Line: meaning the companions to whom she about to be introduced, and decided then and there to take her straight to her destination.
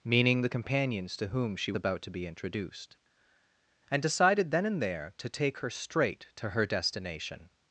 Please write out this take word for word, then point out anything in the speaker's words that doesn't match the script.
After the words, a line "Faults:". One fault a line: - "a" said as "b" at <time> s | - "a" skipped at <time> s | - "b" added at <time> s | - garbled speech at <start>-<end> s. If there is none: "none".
meaning the companions to whom she about to be introduced, and decided then and there to take her straight to her destination.
Faults:
none